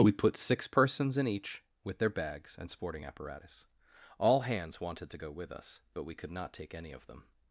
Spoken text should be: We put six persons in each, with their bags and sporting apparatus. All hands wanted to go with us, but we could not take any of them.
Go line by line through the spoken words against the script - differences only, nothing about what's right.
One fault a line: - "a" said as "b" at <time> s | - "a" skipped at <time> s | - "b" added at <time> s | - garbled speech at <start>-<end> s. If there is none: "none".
none